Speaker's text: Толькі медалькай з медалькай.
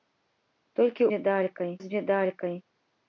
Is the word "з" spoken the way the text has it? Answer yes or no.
yes